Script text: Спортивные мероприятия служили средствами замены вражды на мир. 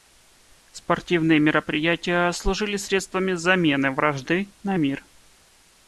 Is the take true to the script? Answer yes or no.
yes